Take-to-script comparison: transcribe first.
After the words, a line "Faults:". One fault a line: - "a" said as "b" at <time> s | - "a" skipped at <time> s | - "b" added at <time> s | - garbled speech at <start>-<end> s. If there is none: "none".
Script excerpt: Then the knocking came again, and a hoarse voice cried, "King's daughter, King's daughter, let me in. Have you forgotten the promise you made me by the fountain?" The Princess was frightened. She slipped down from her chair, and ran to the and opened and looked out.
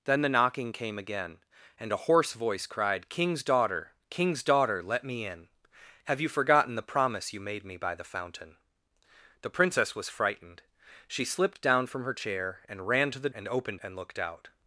Then the knocking came again, and a hoarse voice cried, "King's daughter, King's daughter, let me in. Have you forgotten the promise you made me by the fountain?" The Princess was frightened. She slipped down from her chair, and ran to the and opened and looked out.
Faults:
none